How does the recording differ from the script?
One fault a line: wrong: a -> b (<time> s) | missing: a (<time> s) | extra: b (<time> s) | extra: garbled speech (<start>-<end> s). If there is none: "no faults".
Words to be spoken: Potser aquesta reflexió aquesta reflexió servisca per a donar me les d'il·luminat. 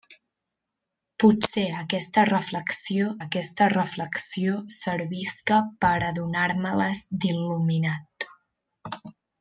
no faults